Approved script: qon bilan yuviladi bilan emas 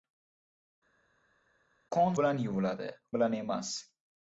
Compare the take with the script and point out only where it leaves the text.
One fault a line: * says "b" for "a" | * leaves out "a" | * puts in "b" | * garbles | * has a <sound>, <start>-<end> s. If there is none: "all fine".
all fine